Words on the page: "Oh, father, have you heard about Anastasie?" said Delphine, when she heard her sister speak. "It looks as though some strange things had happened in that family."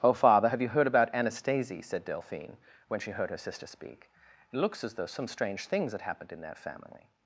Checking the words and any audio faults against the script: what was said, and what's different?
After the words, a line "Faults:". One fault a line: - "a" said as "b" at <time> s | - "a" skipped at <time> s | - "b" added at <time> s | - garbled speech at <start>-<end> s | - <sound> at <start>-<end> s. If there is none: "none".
"Oh, father, have you heard about Anastasie?" said Delphine, when she heard her sister speak. "It looks as though some strange things had happened in that family."
Faults:
none